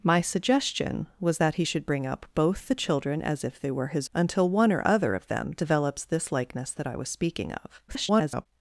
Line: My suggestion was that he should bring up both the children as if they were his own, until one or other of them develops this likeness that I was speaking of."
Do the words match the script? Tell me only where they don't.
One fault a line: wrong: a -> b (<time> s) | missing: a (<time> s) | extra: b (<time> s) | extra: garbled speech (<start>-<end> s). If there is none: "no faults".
missing: own (4.1 s)
extra: garbled speech (7.9-8.5 s)